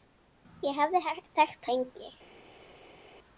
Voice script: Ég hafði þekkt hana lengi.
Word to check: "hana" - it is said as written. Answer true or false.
false